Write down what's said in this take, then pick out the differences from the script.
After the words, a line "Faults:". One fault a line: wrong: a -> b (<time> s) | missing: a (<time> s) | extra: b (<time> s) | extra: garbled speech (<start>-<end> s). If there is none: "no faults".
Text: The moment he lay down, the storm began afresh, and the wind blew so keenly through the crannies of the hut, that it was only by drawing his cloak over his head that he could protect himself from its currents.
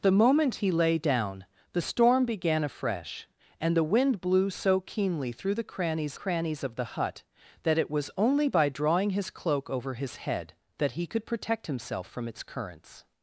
The moment he lay down, the storm began afresh, and the wind blew so keenly through the crannies crannies of the hut, that it was only by drawing his cloak over his head that he could protect himself from its currents.
Faults:
extra: crannies (6.2 s)